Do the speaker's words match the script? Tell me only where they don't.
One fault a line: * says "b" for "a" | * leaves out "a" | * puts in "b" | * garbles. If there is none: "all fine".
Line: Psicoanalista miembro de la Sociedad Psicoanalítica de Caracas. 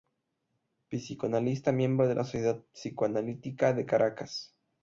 all fine